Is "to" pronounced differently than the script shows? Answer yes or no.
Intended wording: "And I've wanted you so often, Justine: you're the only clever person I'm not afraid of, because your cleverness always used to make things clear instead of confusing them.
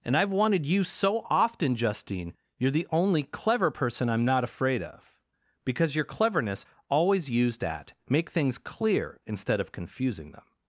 yes